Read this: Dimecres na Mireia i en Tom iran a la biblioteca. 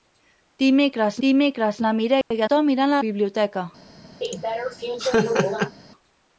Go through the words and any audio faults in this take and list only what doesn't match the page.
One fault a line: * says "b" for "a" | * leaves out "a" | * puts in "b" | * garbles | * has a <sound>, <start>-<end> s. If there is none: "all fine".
* puts in "dimecres"
* has a dropout, 2.2-2.3 s
* leaves out "en"
* leaves out "la"
* has a laugh, 4.2-5.7 s